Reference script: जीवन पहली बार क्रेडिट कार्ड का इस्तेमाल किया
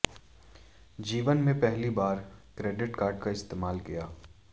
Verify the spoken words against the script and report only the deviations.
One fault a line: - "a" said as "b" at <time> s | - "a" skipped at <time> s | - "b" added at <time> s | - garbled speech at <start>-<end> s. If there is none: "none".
- "में" added at 1.4 s